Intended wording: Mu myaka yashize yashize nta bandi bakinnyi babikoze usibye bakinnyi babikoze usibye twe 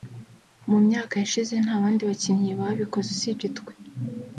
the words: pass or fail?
fail